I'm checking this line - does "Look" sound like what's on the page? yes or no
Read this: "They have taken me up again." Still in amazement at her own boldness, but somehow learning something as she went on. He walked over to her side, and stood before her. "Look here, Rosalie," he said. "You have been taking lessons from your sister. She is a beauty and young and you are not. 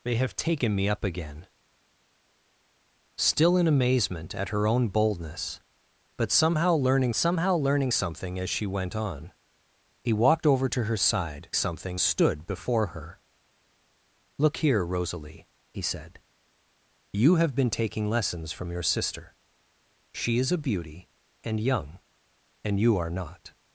yes